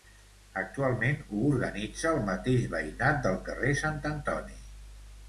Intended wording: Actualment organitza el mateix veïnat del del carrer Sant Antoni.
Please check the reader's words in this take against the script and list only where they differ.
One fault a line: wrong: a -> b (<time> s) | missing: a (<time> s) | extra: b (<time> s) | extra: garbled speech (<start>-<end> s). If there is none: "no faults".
extra: ho (1.2 s)
missing: del (3.4 s)